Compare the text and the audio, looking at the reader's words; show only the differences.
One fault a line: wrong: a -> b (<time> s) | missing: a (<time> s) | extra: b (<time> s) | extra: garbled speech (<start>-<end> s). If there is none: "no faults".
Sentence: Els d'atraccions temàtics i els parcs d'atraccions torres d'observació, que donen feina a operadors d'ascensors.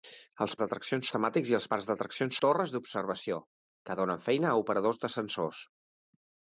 no faults